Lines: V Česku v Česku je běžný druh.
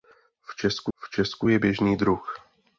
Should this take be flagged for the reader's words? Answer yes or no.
no